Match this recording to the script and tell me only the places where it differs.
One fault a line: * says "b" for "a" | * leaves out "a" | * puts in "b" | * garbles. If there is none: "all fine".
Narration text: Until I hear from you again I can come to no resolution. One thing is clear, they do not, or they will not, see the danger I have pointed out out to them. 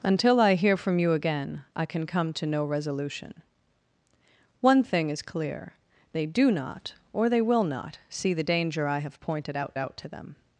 all fine